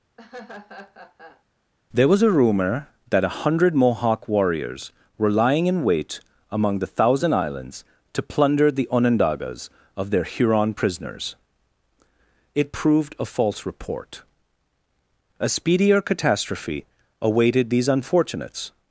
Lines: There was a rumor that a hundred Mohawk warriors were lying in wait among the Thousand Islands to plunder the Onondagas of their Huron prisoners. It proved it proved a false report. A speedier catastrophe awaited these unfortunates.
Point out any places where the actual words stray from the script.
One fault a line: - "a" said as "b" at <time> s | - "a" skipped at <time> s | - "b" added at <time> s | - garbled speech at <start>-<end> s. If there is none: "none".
- "it proved" skipped at 13.1 s